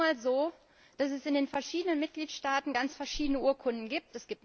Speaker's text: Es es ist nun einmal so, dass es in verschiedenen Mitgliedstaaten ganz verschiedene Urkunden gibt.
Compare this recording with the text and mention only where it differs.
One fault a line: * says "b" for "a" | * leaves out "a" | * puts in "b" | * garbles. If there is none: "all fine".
* leaves out "es"
* puts in "den"